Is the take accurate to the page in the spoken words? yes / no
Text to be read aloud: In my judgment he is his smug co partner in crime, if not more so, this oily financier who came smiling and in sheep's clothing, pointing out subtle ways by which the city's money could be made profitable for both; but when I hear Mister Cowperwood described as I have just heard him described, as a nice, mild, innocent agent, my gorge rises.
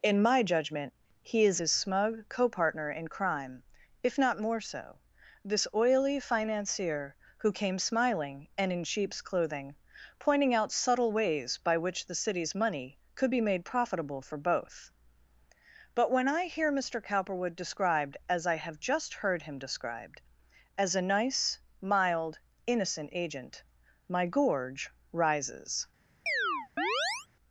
yes